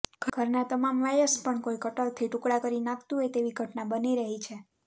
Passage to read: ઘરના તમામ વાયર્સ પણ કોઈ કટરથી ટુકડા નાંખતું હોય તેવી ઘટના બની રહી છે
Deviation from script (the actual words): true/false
true